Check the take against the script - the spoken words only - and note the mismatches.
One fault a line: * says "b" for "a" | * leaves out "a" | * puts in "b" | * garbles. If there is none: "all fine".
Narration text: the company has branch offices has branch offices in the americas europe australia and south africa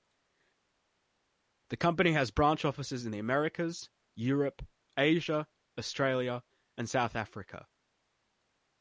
* leaves out "has branch offices"
* puts in "asia"